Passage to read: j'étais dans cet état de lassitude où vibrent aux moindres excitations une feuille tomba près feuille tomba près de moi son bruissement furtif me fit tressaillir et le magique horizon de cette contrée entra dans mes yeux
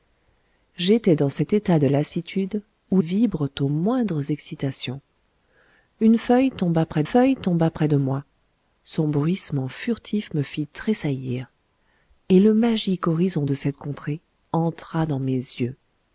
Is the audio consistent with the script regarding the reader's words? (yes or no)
yes